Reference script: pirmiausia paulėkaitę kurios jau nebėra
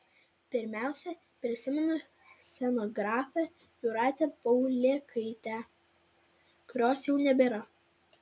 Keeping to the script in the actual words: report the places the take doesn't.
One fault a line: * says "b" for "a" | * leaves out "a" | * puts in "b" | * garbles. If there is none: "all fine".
* puts in "prisimenu scenografę jūratę"